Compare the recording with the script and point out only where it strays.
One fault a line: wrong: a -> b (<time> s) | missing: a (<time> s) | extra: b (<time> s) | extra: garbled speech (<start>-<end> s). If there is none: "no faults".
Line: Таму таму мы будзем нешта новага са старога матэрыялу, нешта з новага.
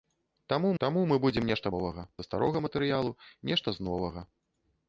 no faults